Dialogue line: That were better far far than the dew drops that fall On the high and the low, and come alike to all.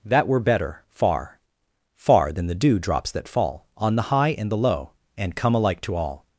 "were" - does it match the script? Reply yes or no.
yes